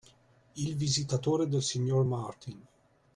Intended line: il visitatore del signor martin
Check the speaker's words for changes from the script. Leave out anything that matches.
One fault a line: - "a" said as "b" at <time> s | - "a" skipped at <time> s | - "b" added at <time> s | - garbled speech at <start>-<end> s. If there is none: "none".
none